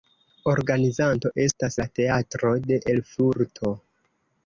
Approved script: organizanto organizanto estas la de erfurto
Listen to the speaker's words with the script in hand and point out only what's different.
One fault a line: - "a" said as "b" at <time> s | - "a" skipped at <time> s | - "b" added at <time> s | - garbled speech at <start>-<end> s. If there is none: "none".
- "organizanto" skipped at 1.3 s
- "teatro" added at 2.0 s